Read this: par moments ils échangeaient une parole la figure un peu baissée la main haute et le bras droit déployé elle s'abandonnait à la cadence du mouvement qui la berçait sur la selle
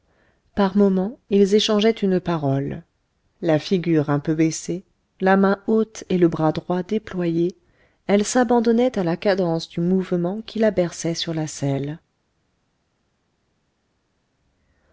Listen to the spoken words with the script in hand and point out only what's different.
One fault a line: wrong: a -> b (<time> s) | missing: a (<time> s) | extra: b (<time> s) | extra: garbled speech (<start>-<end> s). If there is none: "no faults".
no faults